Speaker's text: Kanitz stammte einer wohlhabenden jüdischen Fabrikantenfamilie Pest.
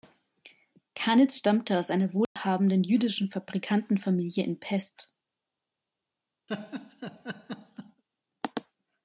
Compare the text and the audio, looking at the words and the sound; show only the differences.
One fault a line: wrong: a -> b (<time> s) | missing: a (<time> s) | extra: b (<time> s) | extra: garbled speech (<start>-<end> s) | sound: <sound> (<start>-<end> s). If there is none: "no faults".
extra: aus (1.8 s)
sound: dropout (2.2-2.4 s)
extra: in (4.4 s)
sound: laugh (6.5-8.0 s)